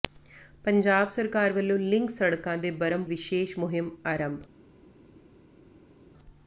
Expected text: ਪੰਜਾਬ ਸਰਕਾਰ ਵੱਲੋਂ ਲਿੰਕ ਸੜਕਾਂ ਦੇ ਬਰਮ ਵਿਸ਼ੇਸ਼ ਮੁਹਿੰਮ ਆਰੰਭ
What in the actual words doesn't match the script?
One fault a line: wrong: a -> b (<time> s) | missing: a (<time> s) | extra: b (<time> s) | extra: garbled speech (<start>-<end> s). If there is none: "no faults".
no faults